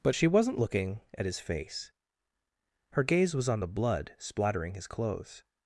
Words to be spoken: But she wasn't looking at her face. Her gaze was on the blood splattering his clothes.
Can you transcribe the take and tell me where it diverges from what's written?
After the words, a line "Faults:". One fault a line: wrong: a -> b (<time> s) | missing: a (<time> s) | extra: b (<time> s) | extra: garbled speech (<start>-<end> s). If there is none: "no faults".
But she wasn't looking at his face. Her gaze was on the blood splattering his clothes.
Faults:
wrong: her -> his (1.3 s)